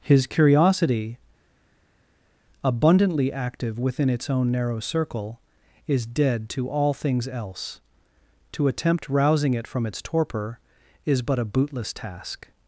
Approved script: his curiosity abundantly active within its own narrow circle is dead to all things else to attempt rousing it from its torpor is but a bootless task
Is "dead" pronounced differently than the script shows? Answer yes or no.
no